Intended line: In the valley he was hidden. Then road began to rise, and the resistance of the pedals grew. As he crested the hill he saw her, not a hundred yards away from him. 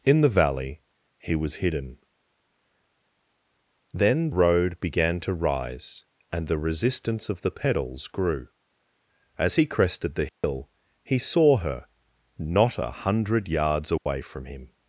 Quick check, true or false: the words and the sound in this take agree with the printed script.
false